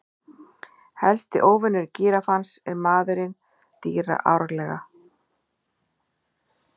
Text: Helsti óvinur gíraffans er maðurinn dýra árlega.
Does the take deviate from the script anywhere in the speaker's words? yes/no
no